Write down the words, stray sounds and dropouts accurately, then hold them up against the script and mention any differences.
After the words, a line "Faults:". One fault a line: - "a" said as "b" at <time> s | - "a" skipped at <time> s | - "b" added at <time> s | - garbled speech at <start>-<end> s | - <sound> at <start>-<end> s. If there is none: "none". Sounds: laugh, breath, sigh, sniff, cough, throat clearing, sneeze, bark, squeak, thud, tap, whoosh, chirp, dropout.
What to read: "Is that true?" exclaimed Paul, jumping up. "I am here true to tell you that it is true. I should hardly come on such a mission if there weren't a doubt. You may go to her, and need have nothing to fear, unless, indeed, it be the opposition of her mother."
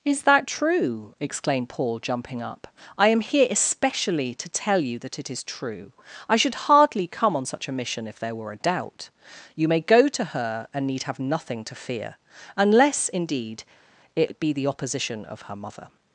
"Is that true?" exclaimed Paul, jumping up. "I am here especially to tell you that it is true. I should hardly come on such a mission if there were a doubt. You may go to her, and need have nothing to fear, unless, indeed, it be the opposition of her mother."
Faults:
- "true" said as "especially" at 3.5 s
- "weren't" said as "were" at 8.3 s